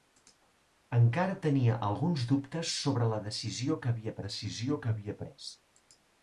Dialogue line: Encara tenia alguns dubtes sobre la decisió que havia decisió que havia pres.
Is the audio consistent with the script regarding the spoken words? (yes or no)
yes